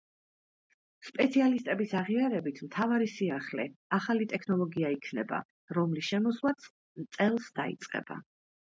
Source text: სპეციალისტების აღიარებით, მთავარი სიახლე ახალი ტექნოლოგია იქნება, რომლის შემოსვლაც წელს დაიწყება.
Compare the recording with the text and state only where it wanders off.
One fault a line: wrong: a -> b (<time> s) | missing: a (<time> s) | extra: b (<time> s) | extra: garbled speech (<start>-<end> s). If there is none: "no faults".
no faults